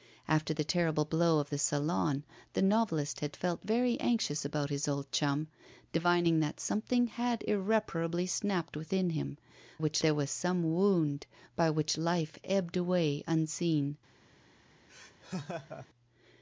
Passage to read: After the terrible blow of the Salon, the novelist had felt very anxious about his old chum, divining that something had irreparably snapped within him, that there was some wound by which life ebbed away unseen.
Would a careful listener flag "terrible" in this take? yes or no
no